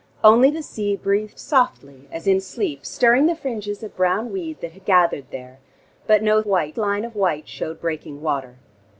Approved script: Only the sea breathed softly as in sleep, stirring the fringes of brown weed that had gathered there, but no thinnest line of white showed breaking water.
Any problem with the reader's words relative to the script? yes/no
yes